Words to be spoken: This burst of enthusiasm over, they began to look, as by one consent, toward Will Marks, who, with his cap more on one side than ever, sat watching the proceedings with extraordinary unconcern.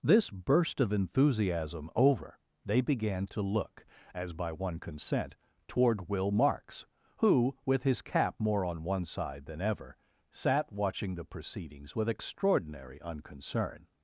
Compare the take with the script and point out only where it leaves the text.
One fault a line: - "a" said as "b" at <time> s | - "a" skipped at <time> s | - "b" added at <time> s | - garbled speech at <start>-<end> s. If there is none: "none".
none